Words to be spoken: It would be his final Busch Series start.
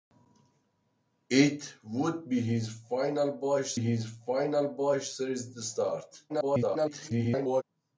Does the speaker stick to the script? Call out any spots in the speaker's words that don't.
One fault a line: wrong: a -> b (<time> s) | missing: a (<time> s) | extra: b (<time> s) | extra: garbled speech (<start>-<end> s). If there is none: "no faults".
extra: his final Busch (3.8 s)
extra: garbled speech (6.3-7.6 s)